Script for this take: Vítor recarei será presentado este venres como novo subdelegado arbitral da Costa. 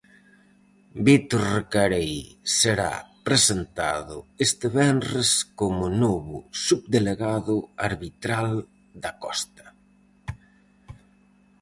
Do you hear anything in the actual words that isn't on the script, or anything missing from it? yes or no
no